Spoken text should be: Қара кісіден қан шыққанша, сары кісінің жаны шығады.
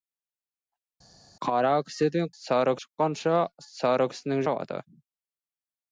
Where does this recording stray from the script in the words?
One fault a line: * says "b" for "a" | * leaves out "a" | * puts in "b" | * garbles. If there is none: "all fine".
* says "сары" for "қан"
* leaves out "жаны"